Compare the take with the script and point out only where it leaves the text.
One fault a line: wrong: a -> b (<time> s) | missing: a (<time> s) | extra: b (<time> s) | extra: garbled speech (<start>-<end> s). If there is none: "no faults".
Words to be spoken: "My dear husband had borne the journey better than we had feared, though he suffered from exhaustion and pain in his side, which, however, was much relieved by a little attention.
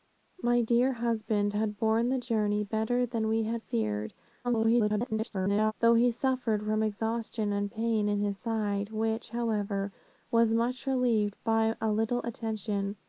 extra: garbled speech (4.4-5.7 s)